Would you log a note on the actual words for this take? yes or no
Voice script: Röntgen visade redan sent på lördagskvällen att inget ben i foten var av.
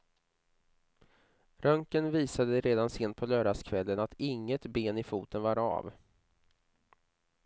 no